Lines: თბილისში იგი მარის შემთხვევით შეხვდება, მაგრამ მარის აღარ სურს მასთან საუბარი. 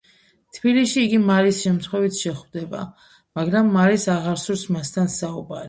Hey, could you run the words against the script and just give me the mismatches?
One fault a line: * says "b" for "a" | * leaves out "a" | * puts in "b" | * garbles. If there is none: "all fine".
all fine